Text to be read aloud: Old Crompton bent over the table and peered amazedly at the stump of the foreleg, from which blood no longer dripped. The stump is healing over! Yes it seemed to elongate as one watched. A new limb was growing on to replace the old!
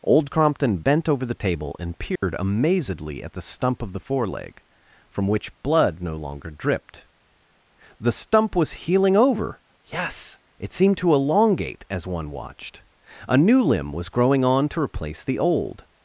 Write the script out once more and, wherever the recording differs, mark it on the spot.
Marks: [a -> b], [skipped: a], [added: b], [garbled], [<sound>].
Old Crompton bent over the table and peered [dropout] amazedly at the stump of the foreleg, from which blood no longer dripped. The stump [is -> was] healing over! Yes it seemed to elongate as one watched. A new limb was growing on to replace the old!